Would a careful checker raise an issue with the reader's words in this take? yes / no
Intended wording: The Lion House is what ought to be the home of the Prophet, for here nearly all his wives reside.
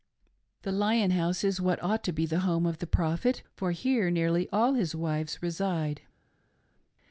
no